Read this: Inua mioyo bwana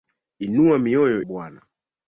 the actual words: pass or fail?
pass